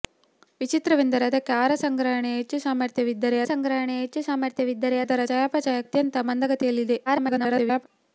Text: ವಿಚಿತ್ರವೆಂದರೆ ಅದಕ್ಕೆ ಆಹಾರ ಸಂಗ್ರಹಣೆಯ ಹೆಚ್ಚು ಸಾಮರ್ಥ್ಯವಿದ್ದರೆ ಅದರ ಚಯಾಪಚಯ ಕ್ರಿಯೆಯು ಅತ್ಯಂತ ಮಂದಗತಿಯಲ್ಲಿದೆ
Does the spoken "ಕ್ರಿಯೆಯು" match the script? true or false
false